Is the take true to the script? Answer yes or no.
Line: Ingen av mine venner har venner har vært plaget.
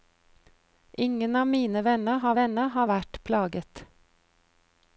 yes